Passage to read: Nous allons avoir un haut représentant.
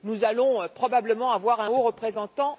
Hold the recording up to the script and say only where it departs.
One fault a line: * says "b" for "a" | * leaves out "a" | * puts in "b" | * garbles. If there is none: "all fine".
* puts in "probablement"